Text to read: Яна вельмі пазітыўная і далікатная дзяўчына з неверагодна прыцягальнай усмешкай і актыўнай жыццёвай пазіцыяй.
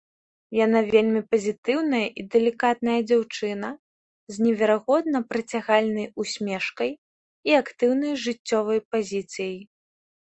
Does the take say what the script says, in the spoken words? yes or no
yes